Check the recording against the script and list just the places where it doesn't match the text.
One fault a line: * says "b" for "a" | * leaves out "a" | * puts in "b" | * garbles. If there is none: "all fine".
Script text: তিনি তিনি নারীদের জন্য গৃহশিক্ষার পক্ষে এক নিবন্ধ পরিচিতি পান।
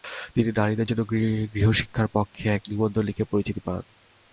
* leaves out "তিনি"
* puts in "লিখে"